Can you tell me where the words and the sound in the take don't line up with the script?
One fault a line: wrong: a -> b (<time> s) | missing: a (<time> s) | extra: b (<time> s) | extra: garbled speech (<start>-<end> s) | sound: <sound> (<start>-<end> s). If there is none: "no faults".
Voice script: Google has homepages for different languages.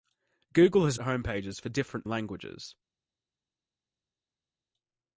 no faults